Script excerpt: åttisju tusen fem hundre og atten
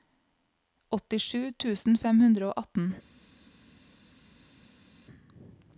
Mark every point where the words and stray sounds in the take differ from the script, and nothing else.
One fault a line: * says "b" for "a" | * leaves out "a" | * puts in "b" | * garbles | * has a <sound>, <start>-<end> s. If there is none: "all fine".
all fine